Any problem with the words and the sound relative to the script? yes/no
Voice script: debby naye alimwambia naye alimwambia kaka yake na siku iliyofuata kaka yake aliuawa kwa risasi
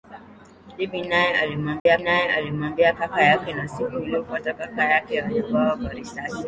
yes